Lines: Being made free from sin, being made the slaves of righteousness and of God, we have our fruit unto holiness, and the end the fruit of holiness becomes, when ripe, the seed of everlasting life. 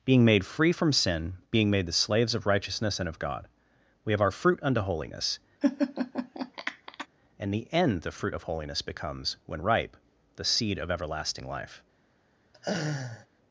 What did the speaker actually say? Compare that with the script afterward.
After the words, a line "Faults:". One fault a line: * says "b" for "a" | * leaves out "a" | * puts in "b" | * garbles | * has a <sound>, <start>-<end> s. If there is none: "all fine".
Being made free from sin, being made the slaves of righteousness and of God, we have our fruit unto holiness, and the end the fruit of holiness becomes, when ripe, the seed of everlasting life.
Faults:
* has a laugh, 5.6-7.1 s
* has a laugh, 12.5-13.3 s